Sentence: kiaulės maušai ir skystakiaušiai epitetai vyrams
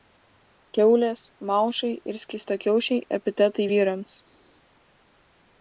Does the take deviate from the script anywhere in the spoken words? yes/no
no